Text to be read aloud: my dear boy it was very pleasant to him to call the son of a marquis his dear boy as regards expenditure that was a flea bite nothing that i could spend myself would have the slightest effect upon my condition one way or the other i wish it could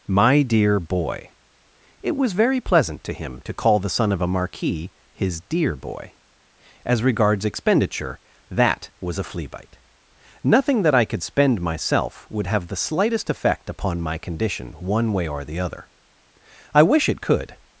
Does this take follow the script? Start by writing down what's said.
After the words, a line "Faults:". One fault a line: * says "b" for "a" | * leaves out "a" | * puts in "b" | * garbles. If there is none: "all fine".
my dear boy it was very pleasant to him to call the son of a marquis his dear boy as regards expenditure that was a flea bite nothing that i could spend myself would have the slightest effect upon my condition one way or the other i wish it could
Faults:
all fine